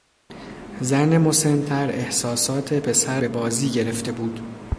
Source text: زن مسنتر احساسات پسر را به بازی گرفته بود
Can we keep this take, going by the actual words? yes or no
no